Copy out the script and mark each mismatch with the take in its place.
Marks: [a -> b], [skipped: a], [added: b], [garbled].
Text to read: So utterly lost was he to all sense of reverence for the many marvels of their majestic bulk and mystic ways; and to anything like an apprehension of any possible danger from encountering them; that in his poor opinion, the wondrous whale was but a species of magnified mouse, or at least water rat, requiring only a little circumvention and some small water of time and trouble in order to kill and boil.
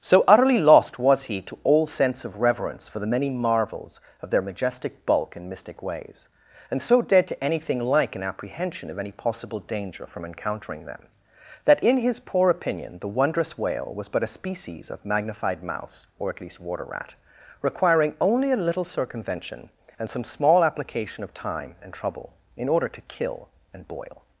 So utterly lost was he to all sense of reverence for the many marvels of their majestic bulk and mystic ways; and [added: so dead] to anything like an apprehension of any possible danger from encountering them; that in his poor opinion, the wondrous whale was but a species of magnified mouse, or at least water rat, requiring only a little circumvention and some small [water -> application] of time and trouble in order to kill and boil.